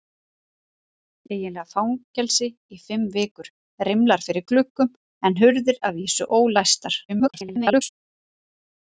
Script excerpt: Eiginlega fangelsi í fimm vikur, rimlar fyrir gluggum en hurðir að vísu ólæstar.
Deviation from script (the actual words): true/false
true